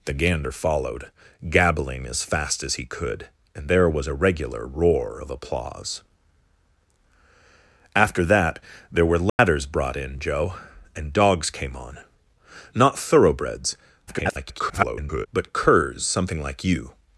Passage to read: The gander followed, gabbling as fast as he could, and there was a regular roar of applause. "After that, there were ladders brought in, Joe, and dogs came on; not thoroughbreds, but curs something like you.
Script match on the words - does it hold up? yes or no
no